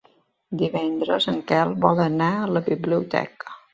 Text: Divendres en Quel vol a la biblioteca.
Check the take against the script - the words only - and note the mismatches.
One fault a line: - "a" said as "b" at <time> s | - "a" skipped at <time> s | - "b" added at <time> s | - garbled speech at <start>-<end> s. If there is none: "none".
- "anar" added at 2.1 s